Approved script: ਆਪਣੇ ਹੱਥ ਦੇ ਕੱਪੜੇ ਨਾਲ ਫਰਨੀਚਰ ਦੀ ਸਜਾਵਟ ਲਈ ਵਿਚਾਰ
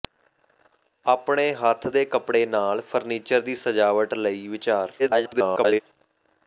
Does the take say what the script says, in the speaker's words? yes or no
no